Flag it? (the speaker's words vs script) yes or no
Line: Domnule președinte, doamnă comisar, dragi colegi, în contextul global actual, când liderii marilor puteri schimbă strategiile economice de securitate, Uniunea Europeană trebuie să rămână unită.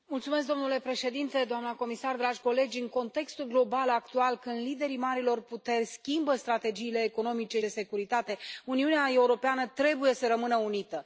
no